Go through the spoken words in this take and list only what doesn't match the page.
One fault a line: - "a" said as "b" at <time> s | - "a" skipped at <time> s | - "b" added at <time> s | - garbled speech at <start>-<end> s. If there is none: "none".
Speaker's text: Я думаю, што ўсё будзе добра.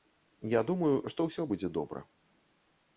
none